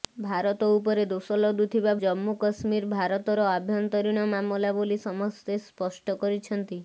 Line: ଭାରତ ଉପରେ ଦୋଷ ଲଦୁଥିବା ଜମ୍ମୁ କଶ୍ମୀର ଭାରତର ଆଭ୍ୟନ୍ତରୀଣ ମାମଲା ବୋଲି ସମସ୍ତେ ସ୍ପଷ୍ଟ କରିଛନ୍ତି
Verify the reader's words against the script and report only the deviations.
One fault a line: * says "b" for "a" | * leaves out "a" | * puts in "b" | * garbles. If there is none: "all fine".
all fine